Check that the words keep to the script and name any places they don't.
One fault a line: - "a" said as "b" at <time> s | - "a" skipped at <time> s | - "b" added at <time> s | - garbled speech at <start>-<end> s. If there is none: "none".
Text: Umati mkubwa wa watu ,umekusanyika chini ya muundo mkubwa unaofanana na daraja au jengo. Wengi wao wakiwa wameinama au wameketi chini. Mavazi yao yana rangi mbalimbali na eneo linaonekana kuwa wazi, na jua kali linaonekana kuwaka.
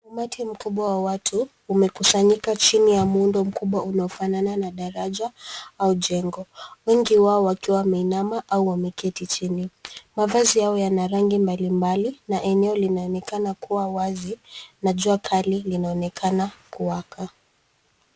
none